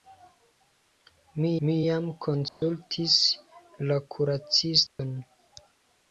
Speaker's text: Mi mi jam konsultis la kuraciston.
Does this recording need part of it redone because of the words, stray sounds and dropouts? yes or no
yes